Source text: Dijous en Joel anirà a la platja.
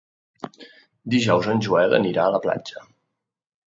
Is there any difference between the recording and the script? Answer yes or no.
no